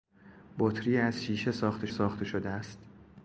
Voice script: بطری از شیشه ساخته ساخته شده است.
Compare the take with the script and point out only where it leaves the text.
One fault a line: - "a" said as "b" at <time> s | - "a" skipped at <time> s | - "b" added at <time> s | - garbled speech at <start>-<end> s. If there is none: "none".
none